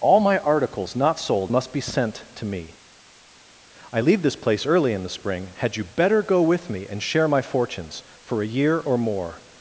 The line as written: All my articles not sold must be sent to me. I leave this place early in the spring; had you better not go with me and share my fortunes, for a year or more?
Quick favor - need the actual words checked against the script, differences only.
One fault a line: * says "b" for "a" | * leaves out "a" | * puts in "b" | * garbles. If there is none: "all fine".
* leaves out "not"